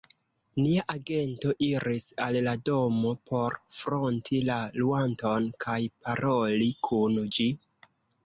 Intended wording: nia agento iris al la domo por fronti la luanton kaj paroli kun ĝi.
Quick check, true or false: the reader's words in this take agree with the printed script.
true